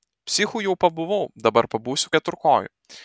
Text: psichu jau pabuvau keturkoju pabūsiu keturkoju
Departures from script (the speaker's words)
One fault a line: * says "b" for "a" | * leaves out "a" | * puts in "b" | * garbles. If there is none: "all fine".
* says "dabar" for "keturkoju"